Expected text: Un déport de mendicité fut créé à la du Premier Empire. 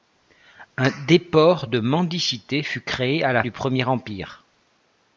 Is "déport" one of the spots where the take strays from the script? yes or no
no